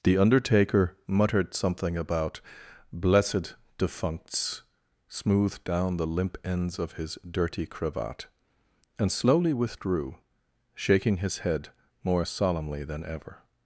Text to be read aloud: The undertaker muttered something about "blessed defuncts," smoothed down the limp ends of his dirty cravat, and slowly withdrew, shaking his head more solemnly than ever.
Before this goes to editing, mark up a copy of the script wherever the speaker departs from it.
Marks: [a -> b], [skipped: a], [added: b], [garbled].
The undertaker muttered something about "blessed defuncts," smoothed down the limp ends of his dirty cravat, and slowly withdrew, shaking his head more solemnly than ever.